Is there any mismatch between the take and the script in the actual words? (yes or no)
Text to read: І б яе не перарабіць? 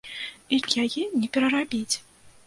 no